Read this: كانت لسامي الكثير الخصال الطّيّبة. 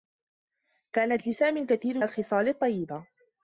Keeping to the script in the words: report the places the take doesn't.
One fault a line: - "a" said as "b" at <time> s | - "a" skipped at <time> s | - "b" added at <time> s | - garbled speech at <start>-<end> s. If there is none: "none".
none